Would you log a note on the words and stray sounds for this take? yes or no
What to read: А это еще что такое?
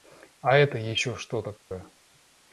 yes